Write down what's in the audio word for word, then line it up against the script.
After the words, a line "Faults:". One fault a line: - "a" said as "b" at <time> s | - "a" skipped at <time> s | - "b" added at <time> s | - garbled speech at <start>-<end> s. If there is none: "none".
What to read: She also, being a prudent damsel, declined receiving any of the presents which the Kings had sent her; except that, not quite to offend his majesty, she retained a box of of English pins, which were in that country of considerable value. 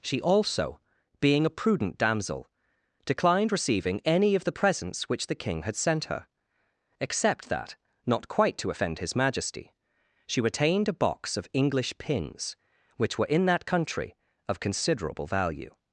She also, being a prudent damsel, declined receiving any of the presents which the King had sent her; except that, not quite to offend his majesty, she retained a box of English pins, which were in that country of considerable value.
Faults:
- "Kings" said as "King" at 5.3 s
- "of" skipped at 11.5 s